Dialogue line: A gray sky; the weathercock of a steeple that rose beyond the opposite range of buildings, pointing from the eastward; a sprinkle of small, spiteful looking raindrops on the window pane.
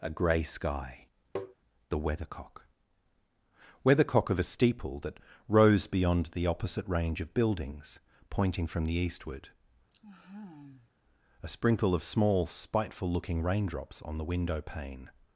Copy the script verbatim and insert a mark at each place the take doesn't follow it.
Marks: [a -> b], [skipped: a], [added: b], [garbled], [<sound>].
A gray sky; [tap] the weathercock [added: weathercock] of a steeple that rose beyond the opposite range of buildings, pointing from the eastward; [sigh] a sprinkle of small, spiteful looking raindrops on the window pane.